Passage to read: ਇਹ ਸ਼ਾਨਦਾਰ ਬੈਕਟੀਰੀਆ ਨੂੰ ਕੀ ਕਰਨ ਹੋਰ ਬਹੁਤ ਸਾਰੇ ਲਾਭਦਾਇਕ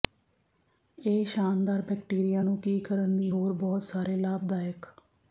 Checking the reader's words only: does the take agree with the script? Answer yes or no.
no